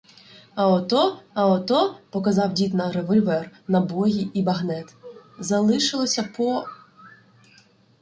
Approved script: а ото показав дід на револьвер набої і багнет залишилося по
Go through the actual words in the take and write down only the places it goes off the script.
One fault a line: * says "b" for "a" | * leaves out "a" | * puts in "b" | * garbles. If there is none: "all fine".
* puts in "а ото"